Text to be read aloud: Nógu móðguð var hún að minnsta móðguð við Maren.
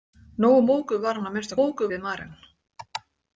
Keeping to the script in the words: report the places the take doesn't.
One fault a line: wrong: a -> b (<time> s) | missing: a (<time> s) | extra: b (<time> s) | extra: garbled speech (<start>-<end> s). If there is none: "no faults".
no faults